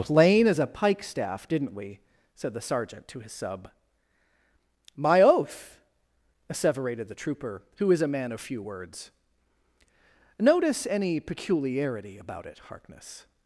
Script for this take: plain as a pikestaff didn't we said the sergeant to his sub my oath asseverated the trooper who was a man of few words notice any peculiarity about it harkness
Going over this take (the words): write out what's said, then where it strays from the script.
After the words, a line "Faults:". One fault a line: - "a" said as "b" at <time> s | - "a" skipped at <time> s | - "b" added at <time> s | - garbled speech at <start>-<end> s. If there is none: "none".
plain as a pikestaff didn't we said the sergeant to his sub my oath asseverated the trooper who is a man of few words notice any peculiarity about it harkness
Faults:
- "was" said as "is" at 7.9 s